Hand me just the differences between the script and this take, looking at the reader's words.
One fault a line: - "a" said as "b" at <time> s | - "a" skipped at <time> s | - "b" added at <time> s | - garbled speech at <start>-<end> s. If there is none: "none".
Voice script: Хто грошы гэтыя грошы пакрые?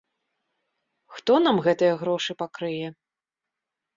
- "грошы" said as "нам" at 1.4 s